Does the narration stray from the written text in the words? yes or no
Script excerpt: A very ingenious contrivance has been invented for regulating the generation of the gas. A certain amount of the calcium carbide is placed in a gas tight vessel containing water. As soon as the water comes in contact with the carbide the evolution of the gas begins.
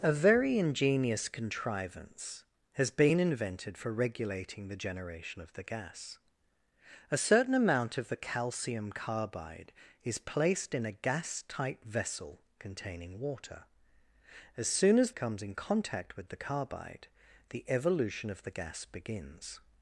yes